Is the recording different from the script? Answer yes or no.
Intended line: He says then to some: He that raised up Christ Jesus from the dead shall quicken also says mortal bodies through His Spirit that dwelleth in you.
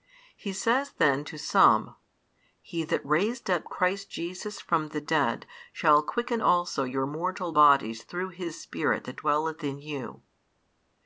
yes